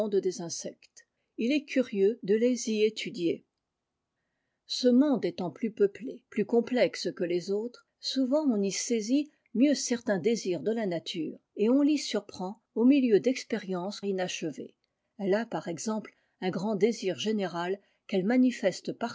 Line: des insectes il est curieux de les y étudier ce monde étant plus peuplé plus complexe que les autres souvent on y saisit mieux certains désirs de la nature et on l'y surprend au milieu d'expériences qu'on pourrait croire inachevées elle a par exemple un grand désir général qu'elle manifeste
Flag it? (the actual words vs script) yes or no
yes